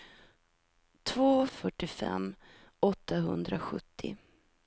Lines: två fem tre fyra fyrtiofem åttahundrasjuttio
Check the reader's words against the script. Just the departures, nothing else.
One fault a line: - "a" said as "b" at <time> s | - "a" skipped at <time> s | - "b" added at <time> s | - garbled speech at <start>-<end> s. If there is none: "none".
- "fem tre fyra" skipped at 1.5 s